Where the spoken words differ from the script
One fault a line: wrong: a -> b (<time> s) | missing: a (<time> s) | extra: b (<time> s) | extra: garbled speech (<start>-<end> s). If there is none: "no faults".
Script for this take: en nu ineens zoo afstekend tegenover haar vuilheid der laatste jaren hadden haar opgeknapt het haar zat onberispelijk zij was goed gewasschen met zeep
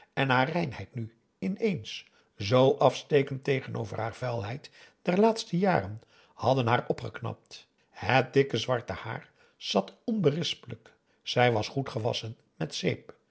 extra: haar reinheid (0.3 s)
extra: dikke zwarte (8.3 s)